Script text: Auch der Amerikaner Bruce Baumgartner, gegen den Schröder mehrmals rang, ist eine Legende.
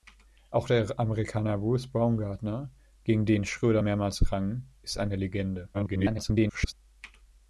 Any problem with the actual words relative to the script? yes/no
yes